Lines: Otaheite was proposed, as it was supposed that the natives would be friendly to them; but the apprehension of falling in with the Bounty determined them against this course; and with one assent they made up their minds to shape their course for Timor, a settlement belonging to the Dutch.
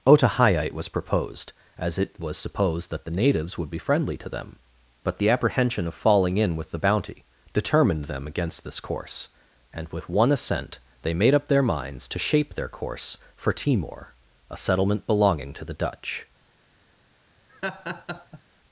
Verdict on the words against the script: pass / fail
pass